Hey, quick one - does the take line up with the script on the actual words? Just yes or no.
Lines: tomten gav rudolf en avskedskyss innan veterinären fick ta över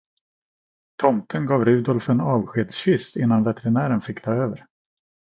yes